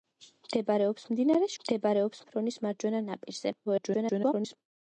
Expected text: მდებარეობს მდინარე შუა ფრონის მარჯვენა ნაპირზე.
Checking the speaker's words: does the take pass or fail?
fail